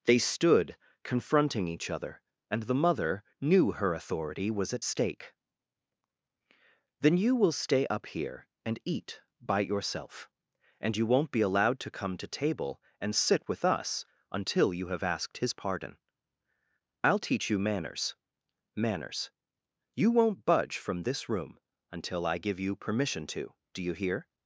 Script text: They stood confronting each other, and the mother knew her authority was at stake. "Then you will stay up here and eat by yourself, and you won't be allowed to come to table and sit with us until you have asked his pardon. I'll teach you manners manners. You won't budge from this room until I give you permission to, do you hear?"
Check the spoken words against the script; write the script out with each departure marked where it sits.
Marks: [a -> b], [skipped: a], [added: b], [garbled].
They stood confronting each other, and the mother knew her authority was at stake. "Then you will stay up here and eat by yourself, and you won't be allowed to come to table and sit with us until you have asked his pardon. I'll teach you manners manners. You won't budge from this room until I give you permission to, do you hear?"